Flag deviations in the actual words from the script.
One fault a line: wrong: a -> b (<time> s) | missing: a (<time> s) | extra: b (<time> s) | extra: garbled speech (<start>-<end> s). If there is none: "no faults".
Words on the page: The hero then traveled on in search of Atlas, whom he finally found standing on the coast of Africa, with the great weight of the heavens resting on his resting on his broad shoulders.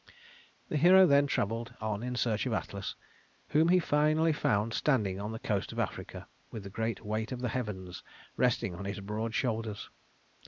missing: resting on his (9.0 s)